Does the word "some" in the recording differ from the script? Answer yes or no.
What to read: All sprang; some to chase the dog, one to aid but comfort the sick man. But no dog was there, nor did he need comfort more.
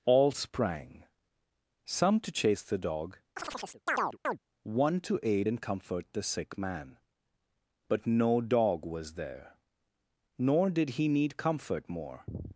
no